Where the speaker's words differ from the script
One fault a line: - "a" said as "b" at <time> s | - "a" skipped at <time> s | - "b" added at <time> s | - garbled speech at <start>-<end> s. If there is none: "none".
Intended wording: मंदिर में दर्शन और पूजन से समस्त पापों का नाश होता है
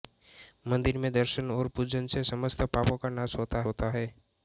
- "होता" added at 3.6 s